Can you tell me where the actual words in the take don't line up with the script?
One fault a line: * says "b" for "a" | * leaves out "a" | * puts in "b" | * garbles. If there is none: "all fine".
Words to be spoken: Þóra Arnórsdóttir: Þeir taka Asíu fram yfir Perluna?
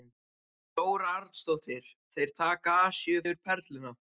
* leaves out "fram"